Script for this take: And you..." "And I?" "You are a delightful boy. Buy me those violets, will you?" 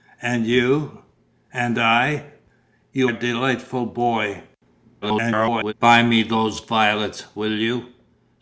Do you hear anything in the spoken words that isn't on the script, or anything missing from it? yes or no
yes